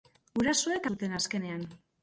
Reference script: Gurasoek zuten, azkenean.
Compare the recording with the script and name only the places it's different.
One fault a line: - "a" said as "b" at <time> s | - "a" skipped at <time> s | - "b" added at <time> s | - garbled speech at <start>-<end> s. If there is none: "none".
none